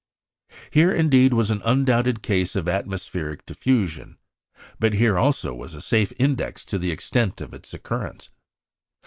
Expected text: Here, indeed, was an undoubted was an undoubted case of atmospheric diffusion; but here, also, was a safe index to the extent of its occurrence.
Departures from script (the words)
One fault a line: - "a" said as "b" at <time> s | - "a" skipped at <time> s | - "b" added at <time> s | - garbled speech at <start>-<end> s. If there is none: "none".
- "was an undoubted" skipped at 2.2 s